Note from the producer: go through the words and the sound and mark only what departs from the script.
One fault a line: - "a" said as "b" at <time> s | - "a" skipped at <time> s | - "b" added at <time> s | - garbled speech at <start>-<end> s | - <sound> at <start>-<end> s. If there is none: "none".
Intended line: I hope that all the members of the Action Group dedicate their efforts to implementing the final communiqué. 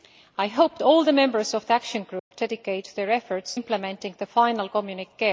- "that" skipped at 0.8 s
- dropout at 2.2-2.3 s
- "to" skipped at 3.6 s